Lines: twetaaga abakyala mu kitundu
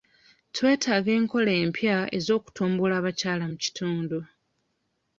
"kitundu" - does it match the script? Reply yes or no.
yes